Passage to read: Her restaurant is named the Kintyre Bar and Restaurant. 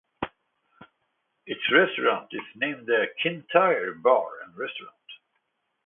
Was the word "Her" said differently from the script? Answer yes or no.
yes